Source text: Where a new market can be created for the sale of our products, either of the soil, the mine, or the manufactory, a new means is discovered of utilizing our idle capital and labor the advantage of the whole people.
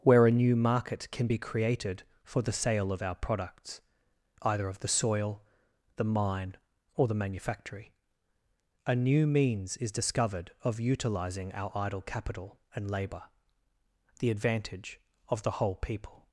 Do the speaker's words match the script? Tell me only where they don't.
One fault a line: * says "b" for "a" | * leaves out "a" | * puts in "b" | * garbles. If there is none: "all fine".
all fine